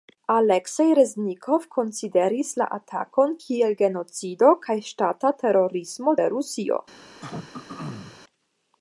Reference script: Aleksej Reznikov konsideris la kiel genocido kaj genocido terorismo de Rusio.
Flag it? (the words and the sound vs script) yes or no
yes